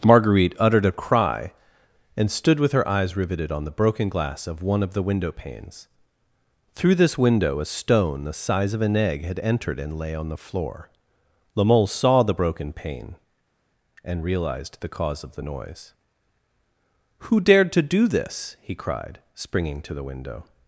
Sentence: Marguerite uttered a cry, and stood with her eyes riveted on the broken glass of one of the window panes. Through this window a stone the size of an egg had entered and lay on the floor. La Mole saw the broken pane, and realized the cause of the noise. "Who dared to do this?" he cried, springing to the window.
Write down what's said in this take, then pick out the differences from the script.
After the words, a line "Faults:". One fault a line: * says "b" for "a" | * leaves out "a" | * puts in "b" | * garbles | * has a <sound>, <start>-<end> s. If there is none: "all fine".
Marguerite uttered a cry, and stood with her eyes riveted on the broken glass of one of the window panes. Through this window a stone the size of an egg had entered and lay on the floor. La Mole saw the broken pane, and realized the cause of the noise. "Who dared to do this?" he cried, springing to the window.
Faults:
all fine